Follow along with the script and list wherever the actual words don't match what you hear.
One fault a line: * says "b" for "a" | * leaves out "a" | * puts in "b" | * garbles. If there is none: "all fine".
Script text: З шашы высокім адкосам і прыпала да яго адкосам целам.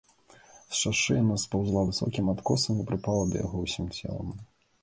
* puts in "яна спаўзла"
* says "ўсім" for "адкосам"